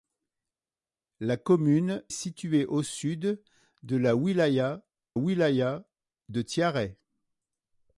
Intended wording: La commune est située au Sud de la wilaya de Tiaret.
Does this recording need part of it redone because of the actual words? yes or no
yes